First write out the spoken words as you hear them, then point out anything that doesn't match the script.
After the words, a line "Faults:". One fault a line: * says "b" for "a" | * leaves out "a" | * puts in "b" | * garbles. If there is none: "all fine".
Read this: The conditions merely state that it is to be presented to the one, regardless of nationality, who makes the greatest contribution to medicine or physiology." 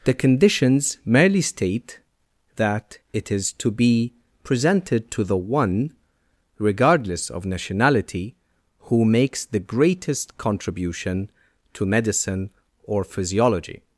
The conditions merely state that it is to be presented to the one, regardless of nationality, who makes the greatest contribution to medicine or physiology."
Faults:
all fine